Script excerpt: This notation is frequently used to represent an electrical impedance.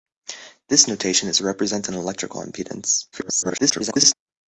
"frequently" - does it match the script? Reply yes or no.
no